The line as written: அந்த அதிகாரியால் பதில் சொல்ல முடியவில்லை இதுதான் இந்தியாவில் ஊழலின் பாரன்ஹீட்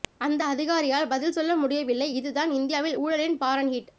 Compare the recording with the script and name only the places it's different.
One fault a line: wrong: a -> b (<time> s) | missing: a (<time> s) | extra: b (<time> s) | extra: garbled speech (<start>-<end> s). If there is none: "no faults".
no faults